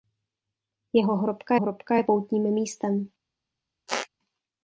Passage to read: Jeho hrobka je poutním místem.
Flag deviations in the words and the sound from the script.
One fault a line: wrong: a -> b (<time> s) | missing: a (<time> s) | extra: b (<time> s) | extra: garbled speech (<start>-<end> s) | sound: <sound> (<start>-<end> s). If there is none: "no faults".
extra: hrobka (1.6 s)
sound: squeak (3.9-4.1 s)